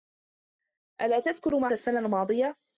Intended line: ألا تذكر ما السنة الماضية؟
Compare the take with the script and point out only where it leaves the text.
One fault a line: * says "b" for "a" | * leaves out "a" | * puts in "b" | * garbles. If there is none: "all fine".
all fine